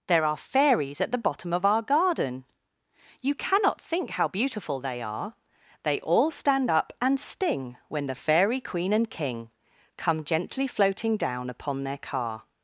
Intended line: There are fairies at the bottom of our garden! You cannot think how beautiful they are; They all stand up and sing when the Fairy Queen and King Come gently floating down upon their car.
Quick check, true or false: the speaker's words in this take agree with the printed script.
false